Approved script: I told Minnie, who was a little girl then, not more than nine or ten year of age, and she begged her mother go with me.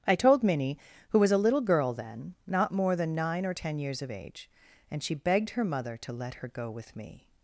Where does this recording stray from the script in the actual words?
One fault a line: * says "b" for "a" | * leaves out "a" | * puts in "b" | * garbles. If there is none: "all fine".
* says "years" for "year"
* puts in "to let her"